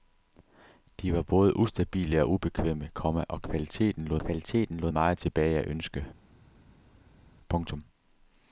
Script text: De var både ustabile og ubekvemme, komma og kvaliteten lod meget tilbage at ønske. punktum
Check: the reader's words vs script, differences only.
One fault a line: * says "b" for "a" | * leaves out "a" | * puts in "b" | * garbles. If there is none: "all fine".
* puts in "kvaliteten lod"